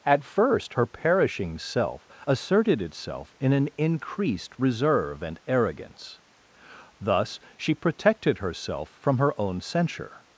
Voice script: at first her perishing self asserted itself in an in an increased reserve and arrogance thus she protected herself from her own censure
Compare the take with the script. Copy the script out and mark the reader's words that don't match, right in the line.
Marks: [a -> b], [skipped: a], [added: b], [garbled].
at first her perishing self asserted itself in an [skipped: in an] increased reserve and arrogance thus she protected herself from her own censure